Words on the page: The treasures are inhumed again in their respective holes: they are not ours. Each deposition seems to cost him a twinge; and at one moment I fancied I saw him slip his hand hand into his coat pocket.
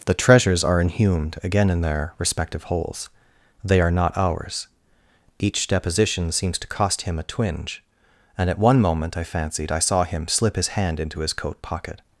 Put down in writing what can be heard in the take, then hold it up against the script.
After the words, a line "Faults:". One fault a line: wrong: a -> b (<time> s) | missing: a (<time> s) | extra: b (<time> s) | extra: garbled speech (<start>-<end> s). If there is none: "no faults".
The treasures are inhumed again in their respective holes: they are not ours. Each deposition seems to cost him a twinge; and at one moment I fancied I saw him slip his hand into his coat pocket.
Faults:
missing: hand (11.0 s)